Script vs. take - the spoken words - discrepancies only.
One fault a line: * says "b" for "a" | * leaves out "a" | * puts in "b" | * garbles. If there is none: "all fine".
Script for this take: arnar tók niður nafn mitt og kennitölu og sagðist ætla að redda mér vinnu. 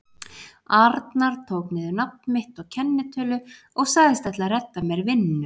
all fine